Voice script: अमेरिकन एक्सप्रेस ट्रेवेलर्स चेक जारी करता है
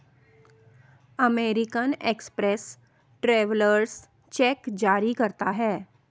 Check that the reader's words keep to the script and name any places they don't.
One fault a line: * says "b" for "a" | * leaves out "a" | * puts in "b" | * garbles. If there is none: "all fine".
all fine